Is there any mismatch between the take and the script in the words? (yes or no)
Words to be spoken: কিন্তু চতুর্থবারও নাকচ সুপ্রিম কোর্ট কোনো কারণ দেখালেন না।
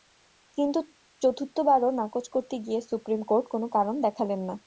yes